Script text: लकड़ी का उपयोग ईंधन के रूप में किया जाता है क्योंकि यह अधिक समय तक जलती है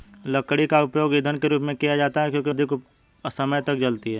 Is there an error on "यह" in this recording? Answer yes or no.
yes